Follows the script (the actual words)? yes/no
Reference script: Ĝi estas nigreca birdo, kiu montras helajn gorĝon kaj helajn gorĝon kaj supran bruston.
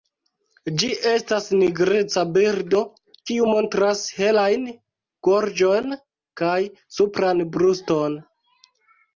no